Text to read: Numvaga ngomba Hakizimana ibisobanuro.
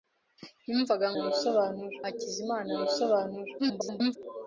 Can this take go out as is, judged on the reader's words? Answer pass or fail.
fail